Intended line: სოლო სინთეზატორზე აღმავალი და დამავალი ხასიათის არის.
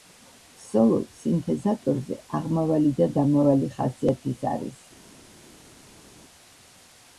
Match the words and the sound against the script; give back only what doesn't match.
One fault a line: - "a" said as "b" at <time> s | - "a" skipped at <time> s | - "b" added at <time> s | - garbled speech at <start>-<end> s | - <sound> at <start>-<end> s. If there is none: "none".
none